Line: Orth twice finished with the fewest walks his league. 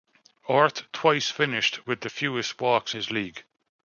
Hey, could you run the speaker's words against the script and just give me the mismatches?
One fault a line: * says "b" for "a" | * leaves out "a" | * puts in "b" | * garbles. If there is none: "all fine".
all fine